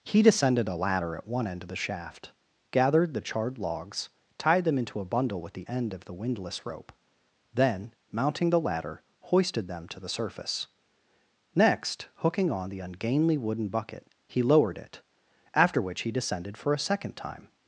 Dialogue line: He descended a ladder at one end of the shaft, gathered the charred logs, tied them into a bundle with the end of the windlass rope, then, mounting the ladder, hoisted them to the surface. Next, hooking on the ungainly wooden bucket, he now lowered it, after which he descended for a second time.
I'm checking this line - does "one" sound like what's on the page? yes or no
yes